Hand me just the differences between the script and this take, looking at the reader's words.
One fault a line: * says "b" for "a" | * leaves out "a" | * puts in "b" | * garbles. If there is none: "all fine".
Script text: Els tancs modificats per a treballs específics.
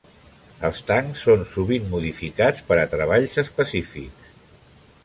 * puts in "són sovint"